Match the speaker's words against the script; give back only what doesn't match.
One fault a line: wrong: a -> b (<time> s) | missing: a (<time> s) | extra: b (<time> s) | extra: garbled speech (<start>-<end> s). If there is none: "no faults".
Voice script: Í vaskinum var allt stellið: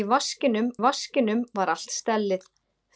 extra: vaskinum (0.8 s)